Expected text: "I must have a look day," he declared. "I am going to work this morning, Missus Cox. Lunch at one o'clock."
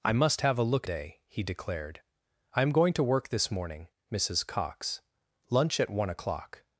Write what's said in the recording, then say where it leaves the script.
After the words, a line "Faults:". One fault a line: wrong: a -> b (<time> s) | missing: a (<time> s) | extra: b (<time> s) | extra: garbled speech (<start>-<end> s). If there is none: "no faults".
"I must have a look day," he declared. "I am going to work this morning, Missus Cox. Lunch at one o'clock."
Faults:
no faults